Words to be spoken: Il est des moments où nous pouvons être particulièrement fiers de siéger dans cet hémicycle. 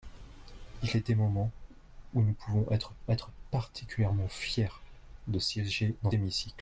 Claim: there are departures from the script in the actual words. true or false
true